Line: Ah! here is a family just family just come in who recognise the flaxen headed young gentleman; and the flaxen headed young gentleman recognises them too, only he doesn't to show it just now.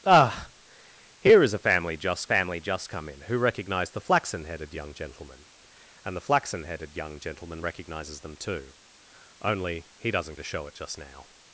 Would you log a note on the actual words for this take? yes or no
no